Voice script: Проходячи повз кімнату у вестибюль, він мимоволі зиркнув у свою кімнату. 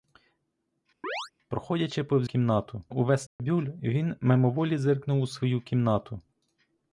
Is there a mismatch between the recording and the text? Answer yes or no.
no